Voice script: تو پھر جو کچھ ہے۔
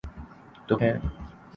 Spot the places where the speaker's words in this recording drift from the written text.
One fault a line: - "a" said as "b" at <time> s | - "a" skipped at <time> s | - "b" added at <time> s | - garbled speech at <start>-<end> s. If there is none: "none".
- "پھر جو کچھ" skipped at 0.8 s